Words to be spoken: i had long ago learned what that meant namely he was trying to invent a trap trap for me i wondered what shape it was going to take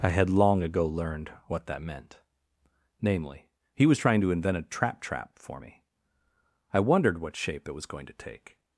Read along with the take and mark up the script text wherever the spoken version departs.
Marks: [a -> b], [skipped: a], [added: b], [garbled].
i had long ago learned what that meant namely he was trying to invent a trap trap for me i wondered what shape it was going to take